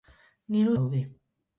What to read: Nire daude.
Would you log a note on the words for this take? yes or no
no